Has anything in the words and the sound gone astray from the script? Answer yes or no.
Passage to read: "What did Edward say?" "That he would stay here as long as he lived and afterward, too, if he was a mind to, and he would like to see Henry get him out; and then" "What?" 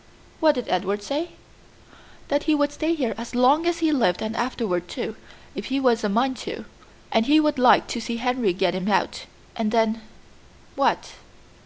no